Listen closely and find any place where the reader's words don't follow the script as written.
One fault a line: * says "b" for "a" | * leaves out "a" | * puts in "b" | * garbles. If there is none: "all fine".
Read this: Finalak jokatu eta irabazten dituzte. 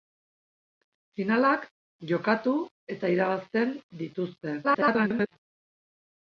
* garbles